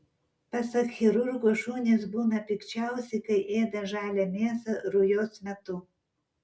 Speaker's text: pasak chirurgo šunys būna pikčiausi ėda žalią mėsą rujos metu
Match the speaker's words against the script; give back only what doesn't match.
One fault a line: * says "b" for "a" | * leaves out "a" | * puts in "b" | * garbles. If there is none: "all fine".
* puts in "kai"